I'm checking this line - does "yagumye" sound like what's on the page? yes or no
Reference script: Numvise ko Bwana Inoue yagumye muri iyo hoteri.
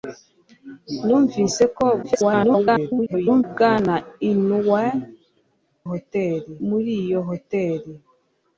no